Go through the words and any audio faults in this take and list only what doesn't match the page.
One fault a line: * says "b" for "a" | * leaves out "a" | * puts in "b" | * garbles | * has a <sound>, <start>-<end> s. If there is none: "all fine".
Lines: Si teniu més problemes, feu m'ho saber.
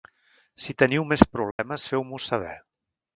* has a dropout, 1.5-1.6 s